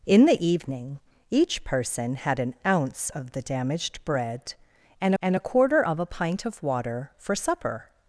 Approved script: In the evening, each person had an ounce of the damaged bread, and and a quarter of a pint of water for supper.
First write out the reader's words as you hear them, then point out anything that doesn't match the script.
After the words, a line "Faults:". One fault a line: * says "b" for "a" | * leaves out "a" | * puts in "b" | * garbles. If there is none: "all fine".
In the evening, each person had an ounce of the damaged bread, and and a quarter of a pint of water for supper.
Faults:
all fine